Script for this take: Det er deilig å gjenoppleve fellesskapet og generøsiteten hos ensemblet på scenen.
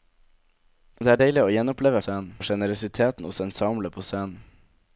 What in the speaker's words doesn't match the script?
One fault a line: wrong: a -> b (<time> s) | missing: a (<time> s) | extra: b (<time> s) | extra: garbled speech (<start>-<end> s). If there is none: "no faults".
wrong: fellesskapet -> scenen (2.0 s)